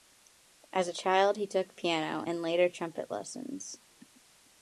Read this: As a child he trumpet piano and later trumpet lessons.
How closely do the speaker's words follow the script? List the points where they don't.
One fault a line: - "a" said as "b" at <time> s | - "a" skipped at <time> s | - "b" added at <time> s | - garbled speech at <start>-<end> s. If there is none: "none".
- "trumpet" said as "took" at 1.4 s